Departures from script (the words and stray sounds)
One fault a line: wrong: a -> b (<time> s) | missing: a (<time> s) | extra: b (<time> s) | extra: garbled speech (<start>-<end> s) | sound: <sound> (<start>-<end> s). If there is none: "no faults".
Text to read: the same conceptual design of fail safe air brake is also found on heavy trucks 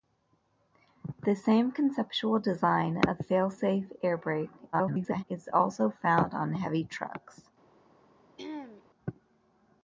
extra: garbled speech (4.7-5.2 s)
sound: throat clearing (8.4-8.8 s)